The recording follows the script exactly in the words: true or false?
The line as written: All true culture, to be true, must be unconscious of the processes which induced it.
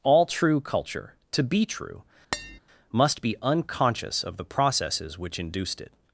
true